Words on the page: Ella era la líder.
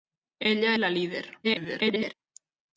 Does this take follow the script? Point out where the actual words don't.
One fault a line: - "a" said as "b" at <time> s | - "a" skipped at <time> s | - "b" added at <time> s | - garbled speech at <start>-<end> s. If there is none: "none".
- "era" skipped at 0.8 s
- garbled speech at 1.4-2.1 s